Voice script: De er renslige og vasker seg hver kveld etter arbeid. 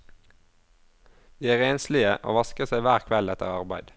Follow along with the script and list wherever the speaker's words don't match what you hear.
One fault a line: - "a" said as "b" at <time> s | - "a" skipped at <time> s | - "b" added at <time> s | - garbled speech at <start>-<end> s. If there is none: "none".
none